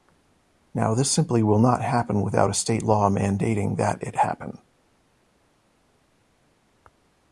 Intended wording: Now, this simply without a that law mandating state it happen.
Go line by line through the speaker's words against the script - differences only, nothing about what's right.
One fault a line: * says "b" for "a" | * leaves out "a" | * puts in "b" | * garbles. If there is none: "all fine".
* puts in "will not happen"
* says "state" for "that"
* says "that" for "state"